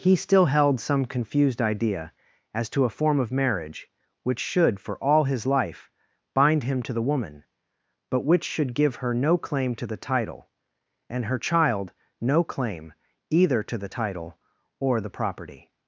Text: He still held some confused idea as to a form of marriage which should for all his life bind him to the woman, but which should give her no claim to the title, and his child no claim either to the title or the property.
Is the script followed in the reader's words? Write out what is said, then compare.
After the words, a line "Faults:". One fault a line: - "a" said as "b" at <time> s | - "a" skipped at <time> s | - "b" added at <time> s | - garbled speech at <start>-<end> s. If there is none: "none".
He still held some confused idea as to a form of marriage which should for all his life bind him to the woman, but which should give her no claim to the title, and her child no claim either to the title or the property.
Faults:
- "his" said as "her" at 11.2 s